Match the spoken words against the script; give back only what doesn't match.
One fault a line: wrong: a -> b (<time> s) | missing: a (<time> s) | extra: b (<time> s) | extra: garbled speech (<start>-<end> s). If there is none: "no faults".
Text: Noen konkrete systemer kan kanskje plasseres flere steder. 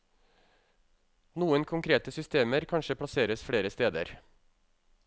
missing: kan (2.7 s)